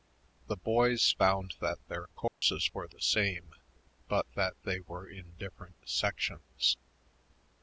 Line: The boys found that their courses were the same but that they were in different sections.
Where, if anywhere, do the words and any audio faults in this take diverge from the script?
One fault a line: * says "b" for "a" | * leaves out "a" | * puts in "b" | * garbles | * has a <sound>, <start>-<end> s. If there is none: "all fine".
* has a dropout, 2.3-2.4 s